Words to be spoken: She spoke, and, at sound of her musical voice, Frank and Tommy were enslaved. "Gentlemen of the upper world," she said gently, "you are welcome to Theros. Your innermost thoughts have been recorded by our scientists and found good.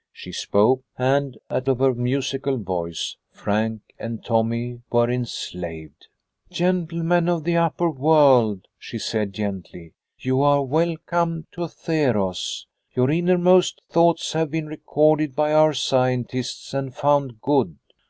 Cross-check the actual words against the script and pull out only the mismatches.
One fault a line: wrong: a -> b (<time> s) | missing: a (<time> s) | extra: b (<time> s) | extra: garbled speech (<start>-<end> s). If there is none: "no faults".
missing: sound (1.7 s)